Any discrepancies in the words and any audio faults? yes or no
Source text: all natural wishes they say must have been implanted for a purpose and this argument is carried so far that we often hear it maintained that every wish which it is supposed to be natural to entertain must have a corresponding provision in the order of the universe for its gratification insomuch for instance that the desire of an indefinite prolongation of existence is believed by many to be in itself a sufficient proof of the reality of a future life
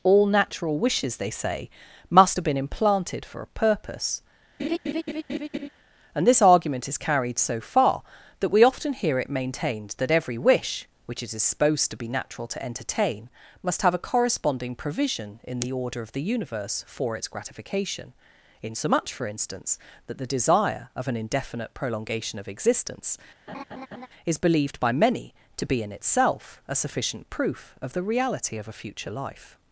yes